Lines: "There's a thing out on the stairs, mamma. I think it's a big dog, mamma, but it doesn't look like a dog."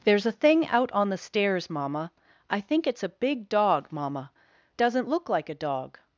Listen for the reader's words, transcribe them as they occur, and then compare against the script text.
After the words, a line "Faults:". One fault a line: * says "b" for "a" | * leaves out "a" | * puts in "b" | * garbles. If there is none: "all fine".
"There's a thing out on the stairs, mamma. I think it's a big dog, mamma, doesn't look like a dog."
Faults:
* leaves out "but it"